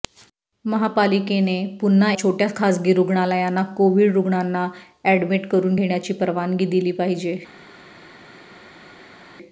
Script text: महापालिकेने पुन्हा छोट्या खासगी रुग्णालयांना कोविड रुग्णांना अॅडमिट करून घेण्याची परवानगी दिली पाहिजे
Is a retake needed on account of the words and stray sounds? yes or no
no